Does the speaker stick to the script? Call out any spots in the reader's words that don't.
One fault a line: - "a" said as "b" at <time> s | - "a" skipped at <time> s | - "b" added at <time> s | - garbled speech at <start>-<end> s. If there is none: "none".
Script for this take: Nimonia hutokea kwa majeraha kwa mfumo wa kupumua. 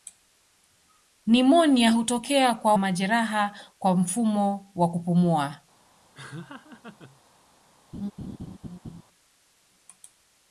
none